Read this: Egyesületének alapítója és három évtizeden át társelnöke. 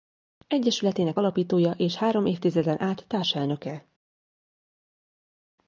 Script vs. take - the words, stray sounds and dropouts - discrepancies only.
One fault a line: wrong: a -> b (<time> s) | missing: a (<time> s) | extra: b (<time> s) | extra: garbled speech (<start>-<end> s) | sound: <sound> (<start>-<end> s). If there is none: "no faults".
no faults